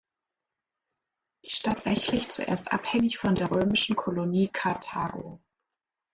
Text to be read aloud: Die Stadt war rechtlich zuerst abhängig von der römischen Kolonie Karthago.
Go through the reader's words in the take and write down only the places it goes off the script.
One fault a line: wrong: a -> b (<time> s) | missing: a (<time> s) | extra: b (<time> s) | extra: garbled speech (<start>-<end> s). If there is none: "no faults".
missing: war (1.9 s)